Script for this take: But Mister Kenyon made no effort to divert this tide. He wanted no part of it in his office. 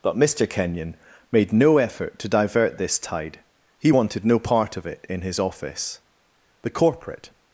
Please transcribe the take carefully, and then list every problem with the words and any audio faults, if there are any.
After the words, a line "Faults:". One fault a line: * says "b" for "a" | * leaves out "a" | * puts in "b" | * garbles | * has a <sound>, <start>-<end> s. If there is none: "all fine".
But Mister Kenyon made no effort to divert this tide. He wanted no part of it in his office. The corporate
Faults:
* puts in "The corporate"